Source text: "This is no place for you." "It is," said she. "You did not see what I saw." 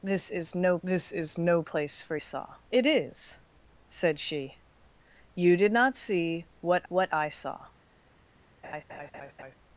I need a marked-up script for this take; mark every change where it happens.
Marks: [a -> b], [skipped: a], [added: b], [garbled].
"This is no [added: this is no] place for [you." -> saw] "It is," said she. "You did not see what [added: what] I saw."